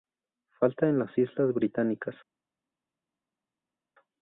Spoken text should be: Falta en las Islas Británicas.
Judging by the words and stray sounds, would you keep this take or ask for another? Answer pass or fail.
pass